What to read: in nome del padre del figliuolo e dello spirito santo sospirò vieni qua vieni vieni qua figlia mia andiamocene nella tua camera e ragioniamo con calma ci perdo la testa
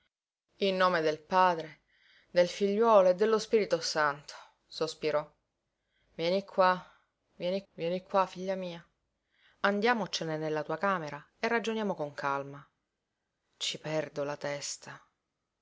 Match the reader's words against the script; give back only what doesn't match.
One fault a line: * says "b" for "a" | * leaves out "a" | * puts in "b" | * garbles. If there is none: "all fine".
all fine